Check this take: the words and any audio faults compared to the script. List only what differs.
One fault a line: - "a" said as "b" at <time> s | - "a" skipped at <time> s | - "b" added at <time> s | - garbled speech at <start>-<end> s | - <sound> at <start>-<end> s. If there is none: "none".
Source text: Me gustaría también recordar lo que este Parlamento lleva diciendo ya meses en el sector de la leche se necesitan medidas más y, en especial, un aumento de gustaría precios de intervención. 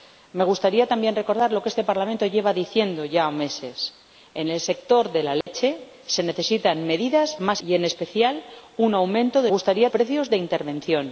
- dropout at 5.4-5.5 s